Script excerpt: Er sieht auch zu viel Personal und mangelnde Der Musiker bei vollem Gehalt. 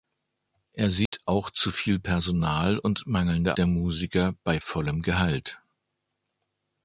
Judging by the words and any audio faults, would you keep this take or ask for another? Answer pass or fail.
fail